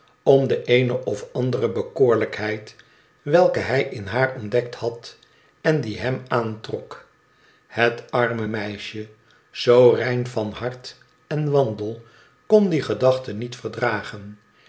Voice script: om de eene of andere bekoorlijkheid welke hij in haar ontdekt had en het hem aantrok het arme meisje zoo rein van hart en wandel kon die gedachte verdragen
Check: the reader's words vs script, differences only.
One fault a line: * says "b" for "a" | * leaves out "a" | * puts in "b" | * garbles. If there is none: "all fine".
* says "die" for "het"
* puts in "niet"